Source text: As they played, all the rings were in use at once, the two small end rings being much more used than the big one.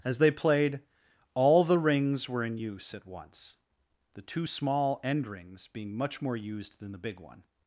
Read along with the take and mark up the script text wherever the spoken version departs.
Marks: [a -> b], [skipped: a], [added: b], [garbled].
As they played, all the rings were in use at once, the two small end rings being much more used than the big one.